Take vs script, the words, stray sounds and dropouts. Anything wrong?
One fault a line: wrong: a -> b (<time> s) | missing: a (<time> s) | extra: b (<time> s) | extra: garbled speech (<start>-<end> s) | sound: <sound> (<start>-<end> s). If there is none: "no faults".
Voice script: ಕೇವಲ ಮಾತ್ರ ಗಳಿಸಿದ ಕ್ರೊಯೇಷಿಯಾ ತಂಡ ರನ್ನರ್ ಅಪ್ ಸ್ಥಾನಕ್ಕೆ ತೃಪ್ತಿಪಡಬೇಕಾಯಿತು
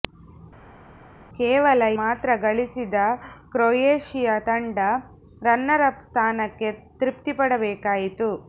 no faults